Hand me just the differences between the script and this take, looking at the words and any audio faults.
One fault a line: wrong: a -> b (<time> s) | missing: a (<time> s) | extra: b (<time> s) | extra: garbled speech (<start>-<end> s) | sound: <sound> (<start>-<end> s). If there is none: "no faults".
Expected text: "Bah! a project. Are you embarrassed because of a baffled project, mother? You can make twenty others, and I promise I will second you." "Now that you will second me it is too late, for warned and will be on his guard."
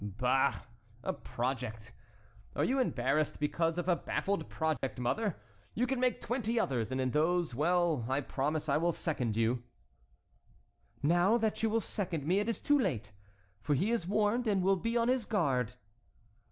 sound: dropout (4.8-4.8 s)
extra: in those well (7.0 s)
extra: he is (13.8 s)